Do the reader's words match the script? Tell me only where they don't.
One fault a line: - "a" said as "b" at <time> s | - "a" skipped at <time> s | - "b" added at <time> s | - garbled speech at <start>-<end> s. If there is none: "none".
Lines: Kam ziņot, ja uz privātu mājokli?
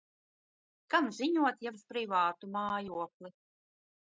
none